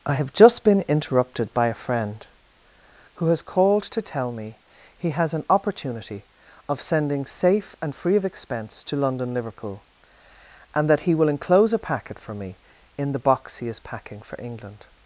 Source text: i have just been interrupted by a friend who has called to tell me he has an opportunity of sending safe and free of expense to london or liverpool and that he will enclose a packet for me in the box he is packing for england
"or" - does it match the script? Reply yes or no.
no